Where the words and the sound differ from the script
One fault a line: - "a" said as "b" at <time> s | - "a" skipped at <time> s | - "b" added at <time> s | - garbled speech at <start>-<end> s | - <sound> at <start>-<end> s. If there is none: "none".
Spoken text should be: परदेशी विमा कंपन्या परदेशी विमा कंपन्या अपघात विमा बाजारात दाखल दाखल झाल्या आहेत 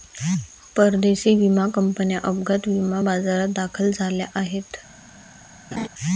- "परदेशी विमा कंपन्या" skipped at 2.2 s
- "दाखल" skipped at 3.9 s
- laugh at 5.7-5.9 s